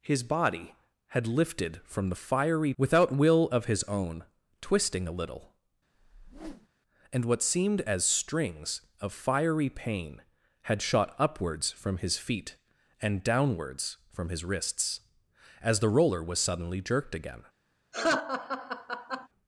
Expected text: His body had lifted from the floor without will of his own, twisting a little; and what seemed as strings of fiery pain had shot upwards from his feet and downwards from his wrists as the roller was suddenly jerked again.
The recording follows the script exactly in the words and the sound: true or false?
false